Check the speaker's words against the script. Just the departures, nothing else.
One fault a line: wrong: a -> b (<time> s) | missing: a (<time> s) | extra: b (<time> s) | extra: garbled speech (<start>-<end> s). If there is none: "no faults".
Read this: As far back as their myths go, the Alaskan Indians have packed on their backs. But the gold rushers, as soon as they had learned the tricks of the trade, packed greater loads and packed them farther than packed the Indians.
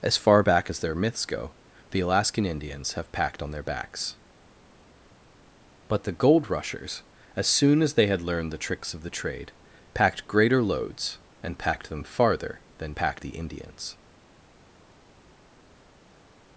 no faults